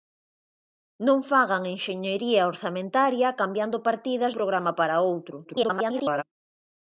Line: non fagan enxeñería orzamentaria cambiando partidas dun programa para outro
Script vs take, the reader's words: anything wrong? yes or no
yes